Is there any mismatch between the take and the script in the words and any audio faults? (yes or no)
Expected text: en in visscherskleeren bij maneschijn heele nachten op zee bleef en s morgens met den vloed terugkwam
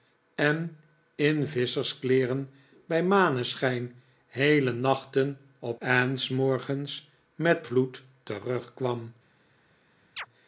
yes